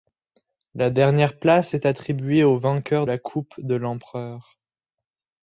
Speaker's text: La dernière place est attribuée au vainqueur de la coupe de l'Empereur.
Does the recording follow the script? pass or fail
fail